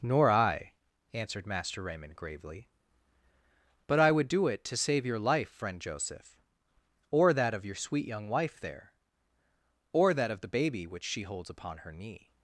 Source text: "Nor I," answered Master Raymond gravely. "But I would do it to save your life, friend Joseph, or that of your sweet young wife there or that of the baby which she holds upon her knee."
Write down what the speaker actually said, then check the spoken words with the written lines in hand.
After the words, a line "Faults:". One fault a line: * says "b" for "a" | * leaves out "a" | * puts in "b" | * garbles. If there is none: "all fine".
"Nor I," answered Master Raymond gravely. "But I would do it to save your life, friend Joseph, or that of your sweet young wife there or that of the baby which she holds upon her knee."
Faults:
all fine